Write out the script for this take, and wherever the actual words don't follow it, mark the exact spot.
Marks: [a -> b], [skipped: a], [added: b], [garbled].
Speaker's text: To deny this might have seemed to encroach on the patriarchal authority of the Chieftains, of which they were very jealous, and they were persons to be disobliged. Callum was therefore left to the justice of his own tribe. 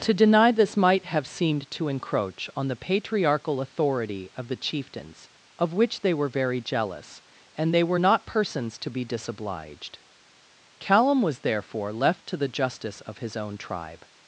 To deny this might have seemed to encroach on the patriarchal authority of the Chieftains, of which they were very jealous, and they were [added: not] persons to be disobliged. Callum was therefore left to the justice of his own tribe.